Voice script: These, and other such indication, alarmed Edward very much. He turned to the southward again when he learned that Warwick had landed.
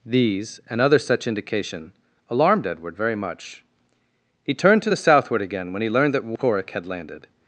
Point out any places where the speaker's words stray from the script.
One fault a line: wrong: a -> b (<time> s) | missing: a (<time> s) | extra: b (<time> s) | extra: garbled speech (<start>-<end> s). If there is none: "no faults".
no faults